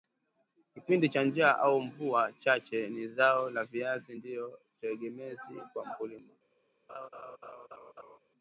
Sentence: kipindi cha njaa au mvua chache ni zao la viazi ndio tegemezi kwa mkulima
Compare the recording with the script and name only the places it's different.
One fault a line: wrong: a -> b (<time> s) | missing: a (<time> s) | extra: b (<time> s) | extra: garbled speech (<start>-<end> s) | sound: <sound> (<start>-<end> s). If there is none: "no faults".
sound: laugh (6.9-8.2 s)